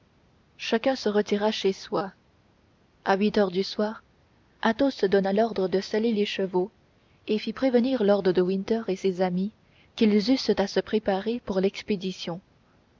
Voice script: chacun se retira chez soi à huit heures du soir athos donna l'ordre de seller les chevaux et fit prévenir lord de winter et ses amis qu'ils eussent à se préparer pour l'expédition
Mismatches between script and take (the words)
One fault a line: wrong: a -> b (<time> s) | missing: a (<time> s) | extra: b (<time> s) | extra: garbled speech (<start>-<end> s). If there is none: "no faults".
no faults